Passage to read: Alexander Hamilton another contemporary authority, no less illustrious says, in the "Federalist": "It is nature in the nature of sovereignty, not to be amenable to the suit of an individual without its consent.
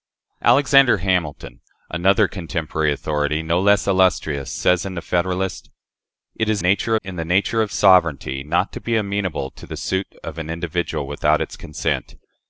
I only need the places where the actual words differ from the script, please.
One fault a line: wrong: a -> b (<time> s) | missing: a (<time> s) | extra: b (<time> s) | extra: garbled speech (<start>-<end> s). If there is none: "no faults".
no faults